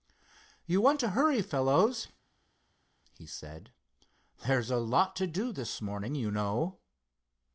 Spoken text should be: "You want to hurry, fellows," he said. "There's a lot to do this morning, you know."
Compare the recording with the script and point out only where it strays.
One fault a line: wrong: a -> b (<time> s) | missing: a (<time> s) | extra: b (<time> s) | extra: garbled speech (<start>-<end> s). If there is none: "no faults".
no faults